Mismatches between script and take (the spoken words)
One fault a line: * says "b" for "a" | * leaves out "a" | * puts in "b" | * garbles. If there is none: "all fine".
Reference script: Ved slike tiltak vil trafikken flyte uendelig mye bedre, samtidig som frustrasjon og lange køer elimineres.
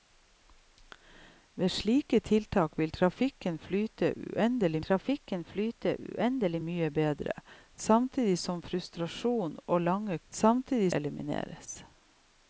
* puts in "trafikken flyte uendelig"
* says "samtidig" for "køer"